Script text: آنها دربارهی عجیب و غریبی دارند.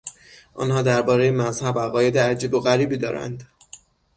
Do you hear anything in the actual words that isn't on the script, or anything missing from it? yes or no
yes